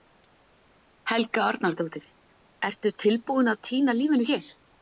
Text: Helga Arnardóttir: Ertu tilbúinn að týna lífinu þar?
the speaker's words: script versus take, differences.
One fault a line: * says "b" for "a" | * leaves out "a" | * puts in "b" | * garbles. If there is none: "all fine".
* says "hér" for "þar"